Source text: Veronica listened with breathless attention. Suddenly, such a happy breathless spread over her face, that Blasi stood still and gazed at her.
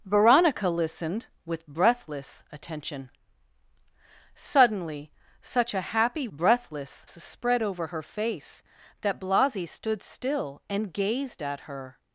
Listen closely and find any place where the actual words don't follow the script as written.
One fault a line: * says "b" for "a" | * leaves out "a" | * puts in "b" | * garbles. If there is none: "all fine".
all fine